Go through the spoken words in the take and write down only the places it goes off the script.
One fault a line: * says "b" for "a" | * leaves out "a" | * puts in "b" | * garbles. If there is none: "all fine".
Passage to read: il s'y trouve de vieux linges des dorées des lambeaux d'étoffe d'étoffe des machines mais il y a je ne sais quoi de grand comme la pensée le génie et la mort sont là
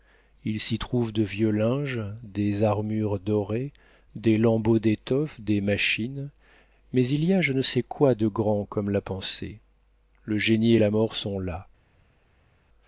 * puts in "armures"
* leaves out "d'étoffe"